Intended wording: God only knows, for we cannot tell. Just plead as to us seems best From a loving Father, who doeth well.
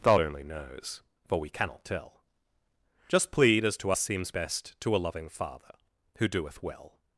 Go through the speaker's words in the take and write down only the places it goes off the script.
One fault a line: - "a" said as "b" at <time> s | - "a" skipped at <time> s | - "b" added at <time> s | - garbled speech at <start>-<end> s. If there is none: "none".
- "From" said as "To" at 4.8 s